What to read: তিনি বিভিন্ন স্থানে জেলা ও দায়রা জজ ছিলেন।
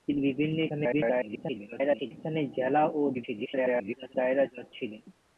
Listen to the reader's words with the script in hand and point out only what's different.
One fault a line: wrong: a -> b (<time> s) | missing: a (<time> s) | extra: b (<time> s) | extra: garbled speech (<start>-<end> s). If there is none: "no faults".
extra: garbled speech (0.7-2.1 s)
extra: garbled speech (3.1-4.1 s)